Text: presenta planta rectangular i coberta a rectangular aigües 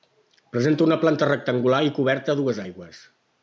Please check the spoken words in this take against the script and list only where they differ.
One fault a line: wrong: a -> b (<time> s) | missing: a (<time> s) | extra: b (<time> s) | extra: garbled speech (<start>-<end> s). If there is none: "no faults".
extra: una (0.8 s)
wrong: rectangular -> dues (2.4 s)